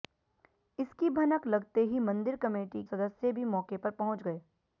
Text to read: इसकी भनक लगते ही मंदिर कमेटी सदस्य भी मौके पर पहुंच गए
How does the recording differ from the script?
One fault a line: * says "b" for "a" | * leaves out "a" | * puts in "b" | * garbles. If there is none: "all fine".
all fine